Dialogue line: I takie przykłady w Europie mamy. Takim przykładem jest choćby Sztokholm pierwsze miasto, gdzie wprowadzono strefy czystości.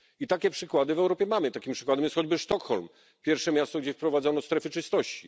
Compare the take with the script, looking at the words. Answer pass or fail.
pass